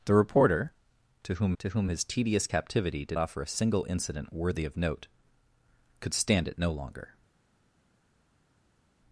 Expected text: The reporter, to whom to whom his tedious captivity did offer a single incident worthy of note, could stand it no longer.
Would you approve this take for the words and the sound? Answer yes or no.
yes